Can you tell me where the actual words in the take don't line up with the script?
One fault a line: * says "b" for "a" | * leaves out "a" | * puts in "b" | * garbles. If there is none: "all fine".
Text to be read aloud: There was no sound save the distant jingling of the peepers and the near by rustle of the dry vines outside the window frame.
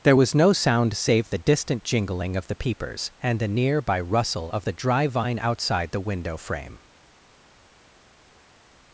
* says "vine" for "vines"